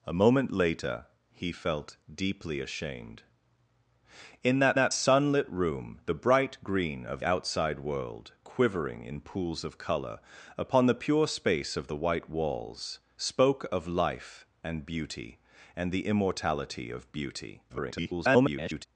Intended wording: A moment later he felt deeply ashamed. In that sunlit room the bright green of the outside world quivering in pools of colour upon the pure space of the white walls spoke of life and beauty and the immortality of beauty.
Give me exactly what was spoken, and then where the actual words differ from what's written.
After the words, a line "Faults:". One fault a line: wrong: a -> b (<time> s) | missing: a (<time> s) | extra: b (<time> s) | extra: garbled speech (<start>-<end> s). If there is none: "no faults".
A moment later he felt deeply ashamed. In that that sunlit room the bright green of outside world quivering in pools of colour upon the pure space of the white walls spoke of life and beauty and the immortality of beauty. [garbled]
Faults:
extra: that (4.7 s)
missing: the (7.2 s)
extra: garbled speech (17.7-18.9 s)